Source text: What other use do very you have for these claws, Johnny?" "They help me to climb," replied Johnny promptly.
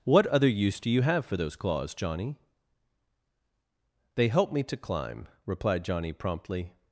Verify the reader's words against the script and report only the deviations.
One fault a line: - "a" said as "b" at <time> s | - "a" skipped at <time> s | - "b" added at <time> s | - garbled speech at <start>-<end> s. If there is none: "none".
- "very" skipped at 0.9 s
- "these" said as "those" at 1.4 s